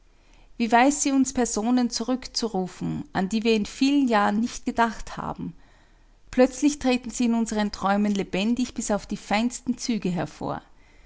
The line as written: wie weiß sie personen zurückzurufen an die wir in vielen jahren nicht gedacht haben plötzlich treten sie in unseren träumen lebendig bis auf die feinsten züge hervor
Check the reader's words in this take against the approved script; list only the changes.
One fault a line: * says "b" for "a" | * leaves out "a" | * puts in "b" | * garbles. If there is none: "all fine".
* puts in "uns"